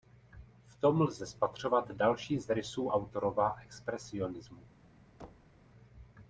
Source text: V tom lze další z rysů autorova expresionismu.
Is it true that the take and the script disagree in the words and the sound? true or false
true